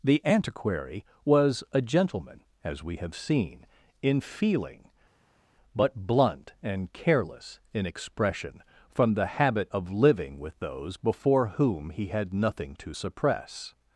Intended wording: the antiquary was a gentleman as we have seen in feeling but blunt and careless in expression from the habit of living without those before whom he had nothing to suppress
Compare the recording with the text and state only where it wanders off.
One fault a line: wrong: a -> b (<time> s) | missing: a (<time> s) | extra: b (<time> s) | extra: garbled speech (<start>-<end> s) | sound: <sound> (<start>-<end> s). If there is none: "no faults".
wrong: without -> with (10.4 s)